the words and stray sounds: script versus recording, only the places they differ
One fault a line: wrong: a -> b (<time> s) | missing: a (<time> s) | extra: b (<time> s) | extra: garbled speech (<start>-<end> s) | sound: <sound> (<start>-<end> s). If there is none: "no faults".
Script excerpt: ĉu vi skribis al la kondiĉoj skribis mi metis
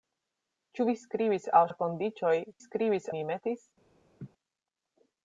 sound: laugh (4.2-4.3 s)